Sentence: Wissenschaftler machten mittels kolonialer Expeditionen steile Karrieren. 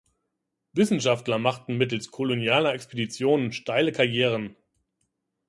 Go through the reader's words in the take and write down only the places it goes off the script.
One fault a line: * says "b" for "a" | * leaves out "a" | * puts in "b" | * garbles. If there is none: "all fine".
all fine